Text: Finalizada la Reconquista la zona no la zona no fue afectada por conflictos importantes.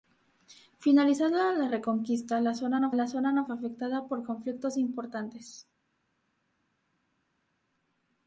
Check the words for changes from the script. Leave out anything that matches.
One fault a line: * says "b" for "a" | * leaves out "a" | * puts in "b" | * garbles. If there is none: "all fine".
all fine